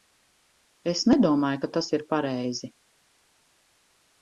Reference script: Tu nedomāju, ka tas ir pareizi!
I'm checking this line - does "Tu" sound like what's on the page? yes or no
no